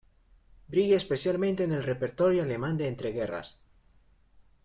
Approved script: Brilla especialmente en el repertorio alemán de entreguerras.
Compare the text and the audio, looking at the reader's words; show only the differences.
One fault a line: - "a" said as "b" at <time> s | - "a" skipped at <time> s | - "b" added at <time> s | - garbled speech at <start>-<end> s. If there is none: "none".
none